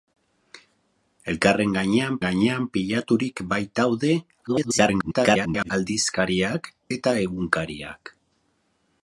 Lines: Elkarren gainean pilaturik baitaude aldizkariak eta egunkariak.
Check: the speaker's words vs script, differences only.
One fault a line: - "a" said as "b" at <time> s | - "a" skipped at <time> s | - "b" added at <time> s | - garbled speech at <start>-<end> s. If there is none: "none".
- "gainean" added at 2.2 s
- garbled speech at 4.5-5.7 s